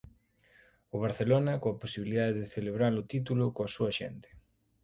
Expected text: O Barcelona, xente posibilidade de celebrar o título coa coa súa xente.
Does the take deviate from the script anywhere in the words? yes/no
yes